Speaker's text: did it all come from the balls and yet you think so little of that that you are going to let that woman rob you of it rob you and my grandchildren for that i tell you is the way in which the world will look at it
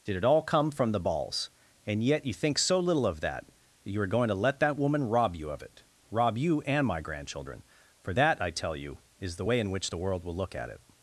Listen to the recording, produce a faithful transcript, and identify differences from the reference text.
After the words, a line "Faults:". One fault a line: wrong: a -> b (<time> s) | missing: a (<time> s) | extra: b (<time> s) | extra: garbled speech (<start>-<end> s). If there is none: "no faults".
did it all come from the balls and yet you think so little of that that you are going to let that woman rob you of it rob you and my grandchildren for that i tell you is the way in which the world will look at it
Faults:
no faults